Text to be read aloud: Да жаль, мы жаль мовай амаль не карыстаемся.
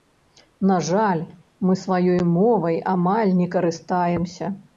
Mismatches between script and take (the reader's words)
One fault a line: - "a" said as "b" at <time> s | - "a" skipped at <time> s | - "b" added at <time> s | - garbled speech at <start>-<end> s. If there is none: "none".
- "Да" said as "На" at 0.7 s
- "жаль" said as "сваёй" at 1.8 s